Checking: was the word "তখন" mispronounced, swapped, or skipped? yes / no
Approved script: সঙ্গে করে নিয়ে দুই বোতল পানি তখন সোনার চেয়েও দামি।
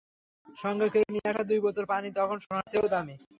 no